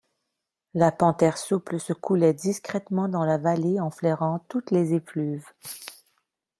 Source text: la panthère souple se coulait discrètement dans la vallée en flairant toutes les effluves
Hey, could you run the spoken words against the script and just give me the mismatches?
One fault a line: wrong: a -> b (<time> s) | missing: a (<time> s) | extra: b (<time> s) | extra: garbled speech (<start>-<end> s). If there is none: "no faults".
no faults